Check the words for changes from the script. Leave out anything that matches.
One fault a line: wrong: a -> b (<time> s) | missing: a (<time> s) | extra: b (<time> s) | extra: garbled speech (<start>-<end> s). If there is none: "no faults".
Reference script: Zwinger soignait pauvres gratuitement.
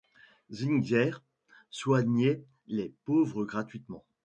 extra: les (2.7 s)